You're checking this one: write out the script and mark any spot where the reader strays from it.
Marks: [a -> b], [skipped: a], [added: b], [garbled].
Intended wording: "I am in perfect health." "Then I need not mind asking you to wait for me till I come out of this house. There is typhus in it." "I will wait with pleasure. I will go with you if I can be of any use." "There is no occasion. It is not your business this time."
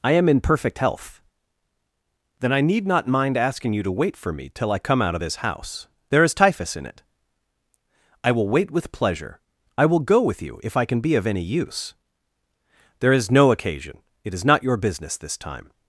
"I am in perfect health." "Then I need not mind asking you to wait for me till I come out of this house. There is typhus in it." "I will wait with pleasure. I will go with you if I can be of any use." "There is no occasion. It is not your business this time."